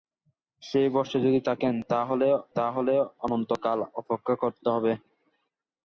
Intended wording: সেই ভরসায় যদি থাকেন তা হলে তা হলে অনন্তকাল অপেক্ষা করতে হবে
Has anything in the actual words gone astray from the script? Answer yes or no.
no